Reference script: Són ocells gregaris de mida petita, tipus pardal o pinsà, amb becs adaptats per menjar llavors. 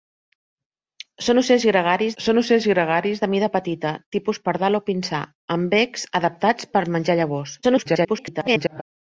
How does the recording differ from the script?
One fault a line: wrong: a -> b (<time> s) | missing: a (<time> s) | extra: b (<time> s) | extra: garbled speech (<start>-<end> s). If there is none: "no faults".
extra: són ocells gregaris (2.2 s)
extra: garbled speech (7.6-8.8 s)